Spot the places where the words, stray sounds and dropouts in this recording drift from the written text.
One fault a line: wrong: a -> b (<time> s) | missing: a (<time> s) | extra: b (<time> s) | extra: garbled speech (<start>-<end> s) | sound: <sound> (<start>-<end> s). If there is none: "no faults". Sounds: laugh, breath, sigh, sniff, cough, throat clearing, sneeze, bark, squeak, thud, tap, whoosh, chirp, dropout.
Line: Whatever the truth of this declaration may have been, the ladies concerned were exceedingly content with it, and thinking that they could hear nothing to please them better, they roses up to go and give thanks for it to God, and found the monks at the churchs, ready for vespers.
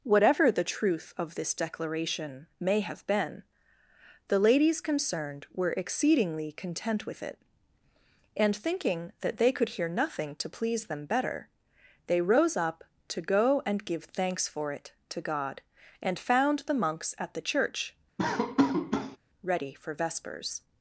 wrong: roses -> rose (12.2 s)
wrong: churchs -> church (17.4 s)
sound: laugh (18.2-19.2 s)